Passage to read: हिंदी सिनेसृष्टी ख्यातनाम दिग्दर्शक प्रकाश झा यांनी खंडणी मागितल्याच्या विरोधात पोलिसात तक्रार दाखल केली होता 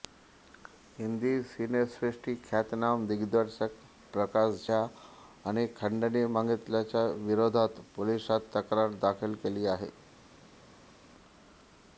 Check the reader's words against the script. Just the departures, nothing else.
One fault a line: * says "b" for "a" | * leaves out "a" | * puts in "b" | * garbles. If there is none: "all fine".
* says "आहे" for "होता"